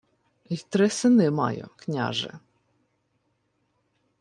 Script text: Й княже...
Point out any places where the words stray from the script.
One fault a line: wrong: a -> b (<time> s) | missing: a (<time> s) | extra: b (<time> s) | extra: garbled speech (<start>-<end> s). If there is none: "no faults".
extra: три сини маю (0.7 s)